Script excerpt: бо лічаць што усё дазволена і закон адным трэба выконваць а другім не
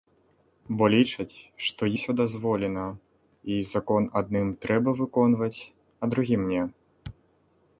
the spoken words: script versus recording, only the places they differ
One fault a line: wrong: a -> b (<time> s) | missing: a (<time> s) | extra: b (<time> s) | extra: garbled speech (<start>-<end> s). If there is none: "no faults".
no faults